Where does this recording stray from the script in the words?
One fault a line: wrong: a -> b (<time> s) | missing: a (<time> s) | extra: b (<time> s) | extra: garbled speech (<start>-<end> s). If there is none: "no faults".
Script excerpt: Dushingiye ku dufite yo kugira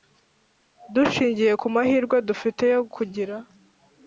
extra: mahirwe (1.7 s)